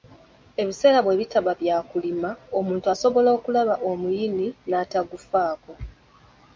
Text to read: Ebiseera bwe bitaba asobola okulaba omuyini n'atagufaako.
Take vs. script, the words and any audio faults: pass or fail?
fail